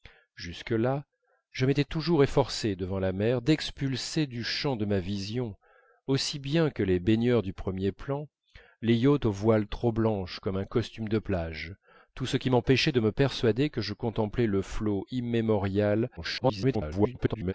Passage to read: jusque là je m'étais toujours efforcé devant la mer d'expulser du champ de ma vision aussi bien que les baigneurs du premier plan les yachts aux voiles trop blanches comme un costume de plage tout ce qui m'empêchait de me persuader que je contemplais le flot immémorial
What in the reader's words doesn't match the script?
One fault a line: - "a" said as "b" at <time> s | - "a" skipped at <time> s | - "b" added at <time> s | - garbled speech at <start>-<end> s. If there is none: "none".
- garbled speech at 16.2-17.5 s